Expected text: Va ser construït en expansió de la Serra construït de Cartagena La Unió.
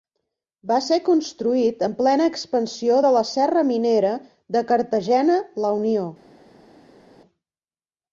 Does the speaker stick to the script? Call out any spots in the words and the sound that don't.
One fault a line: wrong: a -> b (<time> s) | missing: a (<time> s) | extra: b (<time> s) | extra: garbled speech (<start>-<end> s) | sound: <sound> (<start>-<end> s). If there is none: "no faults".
extra: plena (2.0 s)
wrong: construït -> minera (3.7 s)